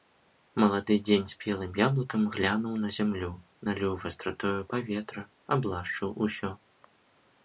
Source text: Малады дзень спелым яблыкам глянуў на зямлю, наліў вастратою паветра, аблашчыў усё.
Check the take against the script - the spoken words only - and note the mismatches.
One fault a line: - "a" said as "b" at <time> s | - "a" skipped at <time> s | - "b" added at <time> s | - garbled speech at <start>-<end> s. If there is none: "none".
none